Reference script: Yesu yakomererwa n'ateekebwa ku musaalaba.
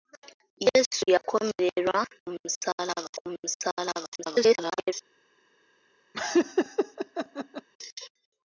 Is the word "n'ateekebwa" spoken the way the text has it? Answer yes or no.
no